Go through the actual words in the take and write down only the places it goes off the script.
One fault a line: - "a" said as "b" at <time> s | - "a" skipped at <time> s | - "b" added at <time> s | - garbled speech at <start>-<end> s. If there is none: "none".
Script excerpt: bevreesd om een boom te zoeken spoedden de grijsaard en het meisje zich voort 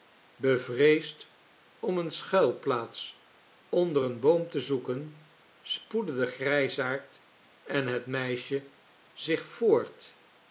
- "eene schuilplaats onder" added at 2.0 s